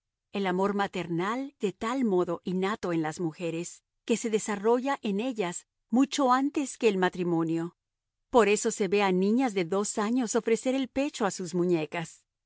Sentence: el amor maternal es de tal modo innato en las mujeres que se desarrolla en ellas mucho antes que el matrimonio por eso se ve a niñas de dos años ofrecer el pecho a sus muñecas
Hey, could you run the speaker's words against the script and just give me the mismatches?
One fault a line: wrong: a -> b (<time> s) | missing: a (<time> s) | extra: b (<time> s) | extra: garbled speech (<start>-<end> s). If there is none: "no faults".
missing: es (1.6 s)